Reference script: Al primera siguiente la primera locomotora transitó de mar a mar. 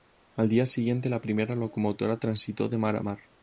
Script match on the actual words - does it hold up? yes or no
no